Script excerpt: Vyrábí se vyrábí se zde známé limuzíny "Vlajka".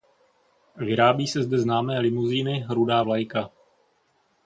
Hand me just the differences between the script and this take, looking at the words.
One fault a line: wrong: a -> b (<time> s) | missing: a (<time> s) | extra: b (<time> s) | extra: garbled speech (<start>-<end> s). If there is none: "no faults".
missing: vyrábí se (1.4 s)
extra: Rudá (2.7 s)